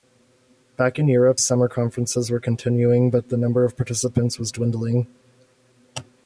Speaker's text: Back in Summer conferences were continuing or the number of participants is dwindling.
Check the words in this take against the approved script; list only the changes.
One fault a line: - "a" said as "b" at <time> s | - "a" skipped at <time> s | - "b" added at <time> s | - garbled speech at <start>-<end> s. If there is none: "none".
- "Europe" added at 1.1 s
- "or" said as "but" at 3.1 s
- "is" said as "was" at 4.4 s